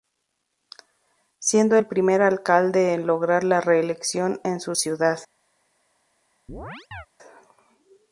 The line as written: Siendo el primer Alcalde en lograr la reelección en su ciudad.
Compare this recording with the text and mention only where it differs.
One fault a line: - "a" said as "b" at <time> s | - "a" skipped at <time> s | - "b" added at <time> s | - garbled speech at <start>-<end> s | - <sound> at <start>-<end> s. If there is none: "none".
- chirp at 6.5-7.1 s